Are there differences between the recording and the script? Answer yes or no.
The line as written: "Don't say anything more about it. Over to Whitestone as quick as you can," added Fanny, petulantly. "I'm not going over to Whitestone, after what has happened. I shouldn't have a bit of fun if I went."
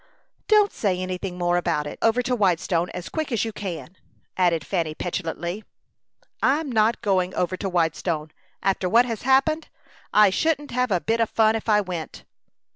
no